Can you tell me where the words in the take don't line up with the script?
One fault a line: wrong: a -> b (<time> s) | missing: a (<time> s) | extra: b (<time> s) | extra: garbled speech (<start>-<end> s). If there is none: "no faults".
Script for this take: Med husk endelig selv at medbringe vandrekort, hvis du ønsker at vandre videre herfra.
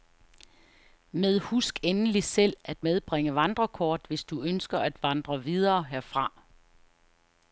no faults